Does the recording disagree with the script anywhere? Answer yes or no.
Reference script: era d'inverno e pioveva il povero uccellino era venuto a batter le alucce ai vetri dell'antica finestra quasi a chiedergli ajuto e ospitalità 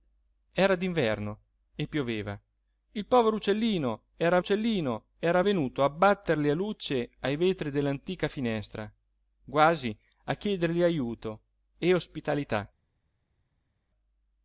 yes